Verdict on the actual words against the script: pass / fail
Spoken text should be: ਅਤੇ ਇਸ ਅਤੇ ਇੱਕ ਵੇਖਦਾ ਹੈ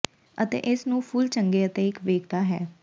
fail